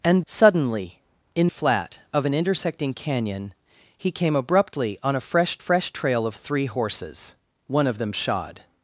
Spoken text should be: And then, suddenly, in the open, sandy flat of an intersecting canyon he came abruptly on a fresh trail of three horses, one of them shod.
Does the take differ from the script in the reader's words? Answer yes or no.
yes